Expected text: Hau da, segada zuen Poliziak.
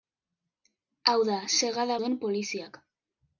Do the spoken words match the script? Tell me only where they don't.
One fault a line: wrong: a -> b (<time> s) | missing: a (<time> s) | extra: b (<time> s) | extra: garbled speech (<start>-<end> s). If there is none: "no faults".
no faults